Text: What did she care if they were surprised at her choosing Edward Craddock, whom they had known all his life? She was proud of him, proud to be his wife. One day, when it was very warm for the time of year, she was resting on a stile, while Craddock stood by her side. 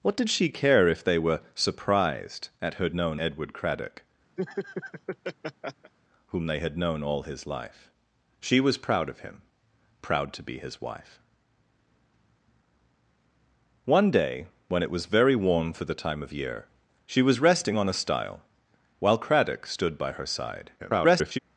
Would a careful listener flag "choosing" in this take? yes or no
yes